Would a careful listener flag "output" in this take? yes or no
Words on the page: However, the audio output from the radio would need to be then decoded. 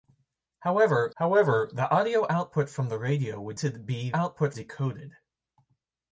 no